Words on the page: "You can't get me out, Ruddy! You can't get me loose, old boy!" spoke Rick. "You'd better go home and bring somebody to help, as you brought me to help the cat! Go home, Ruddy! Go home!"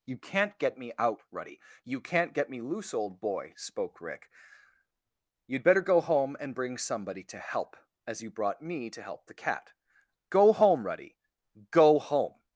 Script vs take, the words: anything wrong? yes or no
no